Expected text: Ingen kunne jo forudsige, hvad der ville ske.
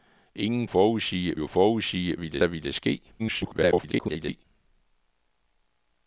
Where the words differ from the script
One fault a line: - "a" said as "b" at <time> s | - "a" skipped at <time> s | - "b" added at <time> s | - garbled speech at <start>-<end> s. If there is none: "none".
- "kunne" said as "forudsige" at 0.6 s
- "hvad" said as "ville" at 2.2 s
- garbled speech at 3.2-4.4 s